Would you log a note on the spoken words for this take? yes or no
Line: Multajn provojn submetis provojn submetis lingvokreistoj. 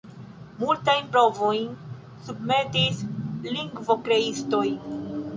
yes